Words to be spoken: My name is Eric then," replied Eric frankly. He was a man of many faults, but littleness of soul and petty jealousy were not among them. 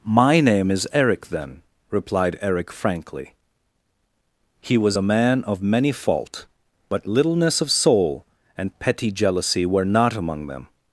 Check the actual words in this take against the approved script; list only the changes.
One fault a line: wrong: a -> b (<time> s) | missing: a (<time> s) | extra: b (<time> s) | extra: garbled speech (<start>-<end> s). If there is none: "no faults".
wrong: faults -> fault (5.9 s)